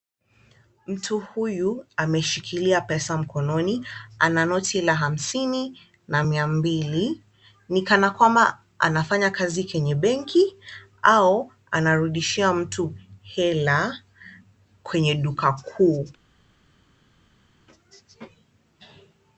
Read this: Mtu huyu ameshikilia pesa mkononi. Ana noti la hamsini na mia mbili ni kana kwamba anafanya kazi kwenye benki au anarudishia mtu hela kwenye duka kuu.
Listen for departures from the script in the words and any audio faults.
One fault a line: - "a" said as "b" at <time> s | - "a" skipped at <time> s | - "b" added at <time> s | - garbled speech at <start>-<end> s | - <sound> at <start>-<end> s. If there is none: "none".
none